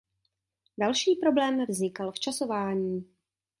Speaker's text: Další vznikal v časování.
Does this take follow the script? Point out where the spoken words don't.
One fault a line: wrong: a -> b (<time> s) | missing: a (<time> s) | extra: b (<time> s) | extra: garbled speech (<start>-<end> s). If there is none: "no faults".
extra: problém (1.1 s)